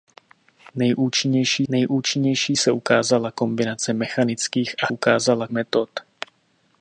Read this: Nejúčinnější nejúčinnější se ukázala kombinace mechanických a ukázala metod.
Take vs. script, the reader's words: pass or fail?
pass